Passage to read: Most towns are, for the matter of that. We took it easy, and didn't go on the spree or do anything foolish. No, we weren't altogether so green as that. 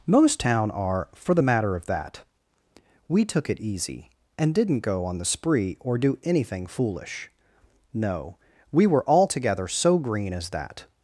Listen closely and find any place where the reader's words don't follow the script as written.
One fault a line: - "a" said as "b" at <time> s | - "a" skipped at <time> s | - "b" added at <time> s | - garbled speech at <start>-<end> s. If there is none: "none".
- "towns" said as "town" at 0.4 s
- "weren't" said as "were" at 8.9 s